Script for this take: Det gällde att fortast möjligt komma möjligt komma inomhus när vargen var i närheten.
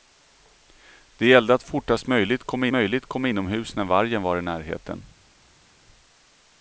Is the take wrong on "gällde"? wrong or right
right